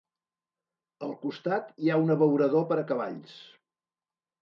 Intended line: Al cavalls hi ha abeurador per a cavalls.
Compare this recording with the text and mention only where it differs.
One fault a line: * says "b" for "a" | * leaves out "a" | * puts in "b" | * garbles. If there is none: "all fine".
* says "costat" for "cavalls"
* puts in "un"